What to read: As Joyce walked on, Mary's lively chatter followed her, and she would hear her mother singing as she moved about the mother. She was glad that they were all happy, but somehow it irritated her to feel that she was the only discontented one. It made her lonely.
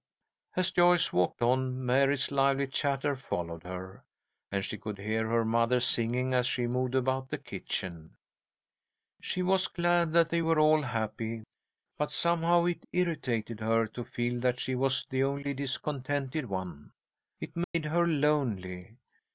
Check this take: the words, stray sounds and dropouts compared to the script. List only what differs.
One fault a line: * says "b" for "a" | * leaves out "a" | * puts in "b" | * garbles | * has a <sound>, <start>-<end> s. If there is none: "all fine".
* says "could" for "would"
* says "kitchen" for "mother"
* has a dropout, 17.6-17.7 s